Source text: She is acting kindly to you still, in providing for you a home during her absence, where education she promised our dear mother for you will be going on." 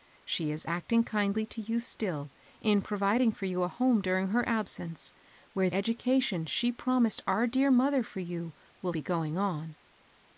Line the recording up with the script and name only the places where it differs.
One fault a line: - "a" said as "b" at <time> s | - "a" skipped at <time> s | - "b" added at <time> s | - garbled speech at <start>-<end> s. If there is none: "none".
none